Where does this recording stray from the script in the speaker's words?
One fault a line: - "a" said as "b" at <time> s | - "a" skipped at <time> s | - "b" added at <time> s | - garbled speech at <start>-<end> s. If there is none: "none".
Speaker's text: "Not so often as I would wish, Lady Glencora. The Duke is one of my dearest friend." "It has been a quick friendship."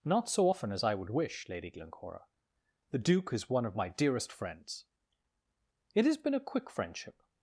- "friend" said as "friends" at 4.3 s